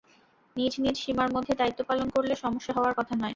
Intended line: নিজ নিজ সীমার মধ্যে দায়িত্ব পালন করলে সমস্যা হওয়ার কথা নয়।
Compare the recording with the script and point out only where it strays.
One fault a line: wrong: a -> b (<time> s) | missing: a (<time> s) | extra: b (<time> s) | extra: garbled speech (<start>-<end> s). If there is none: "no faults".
no faults